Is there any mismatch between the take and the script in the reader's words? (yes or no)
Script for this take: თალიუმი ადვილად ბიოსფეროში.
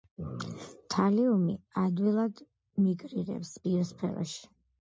yes